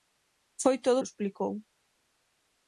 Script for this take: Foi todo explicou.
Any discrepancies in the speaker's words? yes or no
no